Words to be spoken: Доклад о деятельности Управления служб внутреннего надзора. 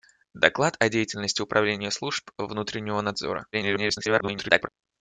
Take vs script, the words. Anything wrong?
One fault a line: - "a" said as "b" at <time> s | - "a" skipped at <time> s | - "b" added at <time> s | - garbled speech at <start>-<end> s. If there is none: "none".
- garbled speech at 3.5-4.7 s